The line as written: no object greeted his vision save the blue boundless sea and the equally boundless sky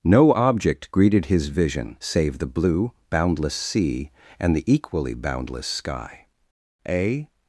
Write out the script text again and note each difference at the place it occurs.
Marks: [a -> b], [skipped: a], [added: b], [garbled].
no object greeted his vision save the blue boundless sea and the equally boundless sky [added: a]